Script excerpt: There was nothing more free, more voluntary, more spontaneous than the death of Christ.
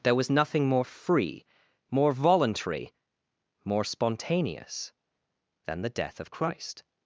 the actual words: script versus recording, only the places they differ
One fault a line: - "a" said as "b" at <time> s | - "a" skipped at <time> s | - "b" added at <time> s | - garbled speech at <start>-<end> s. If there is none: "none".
none